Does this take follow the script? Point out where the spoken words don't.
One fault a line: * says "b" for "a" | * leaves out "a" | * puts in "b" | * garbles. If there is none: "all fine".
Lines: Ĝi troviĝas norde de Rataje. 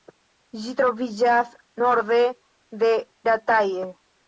all fine